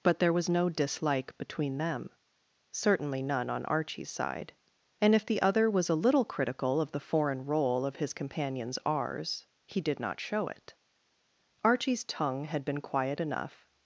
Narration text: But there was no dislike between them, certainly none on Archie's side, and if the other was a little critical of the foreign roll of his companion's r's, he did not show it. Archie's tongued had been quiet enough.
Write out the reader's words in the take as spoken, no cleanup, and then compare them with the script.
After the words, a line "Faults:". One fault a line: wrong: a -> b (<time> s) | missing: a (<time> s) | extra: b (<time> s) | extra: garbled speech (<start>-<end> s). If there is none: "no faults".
But there was no dislike between them, certainly none on Archie's side, and if the other was a little critical of the foreign roll of his companion's r's, he did not show it. Archie's tongue had been quiet enough.
Faults:
wrong: tongued -> tongue (12.0 s)